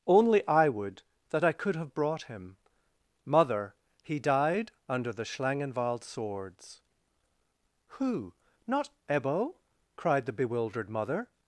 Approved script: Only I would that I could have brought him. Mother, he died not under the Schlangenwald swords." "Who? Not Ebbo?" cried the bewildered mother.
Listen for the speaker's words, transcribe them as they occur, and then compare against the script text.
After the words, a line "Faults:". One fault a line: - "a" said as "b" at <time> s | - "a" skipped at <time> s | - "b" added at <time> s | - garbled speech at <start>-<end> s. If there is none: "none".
Only I would that I could have brought him. Mother, he died under the Schlangenwald swords." "Who? Not Ebbo?" cried the bewildered mother.
Faults:
- "not" skipped at 4.7 s